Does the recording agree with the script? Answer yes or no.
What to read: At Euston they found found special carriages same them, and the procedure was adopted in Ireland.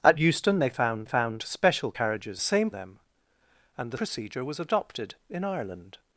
yes